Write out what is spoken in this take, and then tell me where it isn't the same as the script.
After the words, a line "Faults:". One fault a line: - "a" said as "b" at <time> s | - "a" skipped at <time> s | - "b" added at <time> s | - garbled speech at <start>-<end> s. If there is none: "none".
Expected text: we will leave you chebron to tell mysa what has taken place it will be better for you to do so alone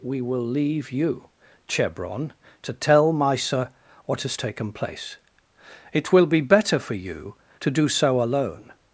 we will leave you chebron to tell mysa what has taken place it will be better for you to do so alone
Faults:
none